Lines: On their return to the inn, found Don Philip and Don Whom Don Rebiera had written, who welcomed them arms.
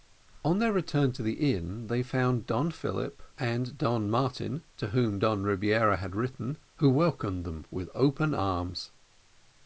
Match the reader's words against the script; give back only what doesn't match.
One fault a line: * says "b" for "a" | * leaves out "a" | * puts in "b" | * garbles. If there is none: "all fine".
* puts in "they"
* puts in "Martin to"
* puts in "with open"